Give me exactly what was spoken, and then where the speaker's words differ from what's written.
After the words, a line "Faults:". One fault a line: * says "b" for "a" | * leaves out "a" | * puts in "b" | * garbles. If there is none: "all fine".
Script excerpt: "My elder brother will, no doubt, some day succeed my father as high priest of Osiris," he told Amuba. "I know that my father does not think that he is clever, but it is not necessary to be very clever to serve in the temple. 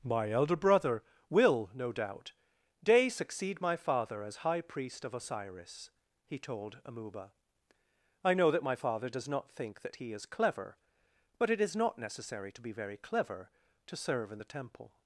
"My elder brother will, no doubt, day succeed my father as high priest of Osiris," he told Amuba. "I know that my father does not think that he is clever, but it is not necessary to be very clever to serve in the temple.
Faults:
* leaves out "some"